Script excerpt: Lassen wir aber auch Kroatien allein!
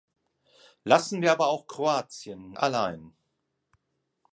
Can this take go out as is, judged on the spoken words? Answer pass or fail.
pass